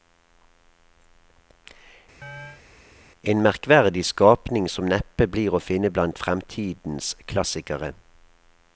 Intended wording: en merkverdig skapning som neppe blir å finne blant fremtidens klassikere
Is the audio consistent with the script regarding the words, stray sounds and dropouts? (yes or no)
no